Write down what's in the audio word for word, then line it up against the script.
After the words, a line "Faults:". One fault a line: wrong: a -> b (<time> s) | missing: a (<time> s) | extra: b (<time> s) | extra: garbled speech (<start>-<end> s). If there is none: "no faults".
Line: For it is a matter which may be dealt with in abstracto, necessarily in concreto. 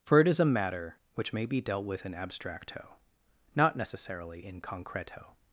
For it is a matter which may be dealt with in abstracto, not necessarily in concreto.
Faults:
extra: not (3.5 s)